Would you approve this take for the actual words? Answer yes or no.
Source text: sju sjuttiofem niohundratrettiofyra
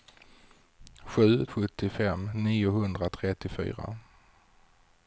yes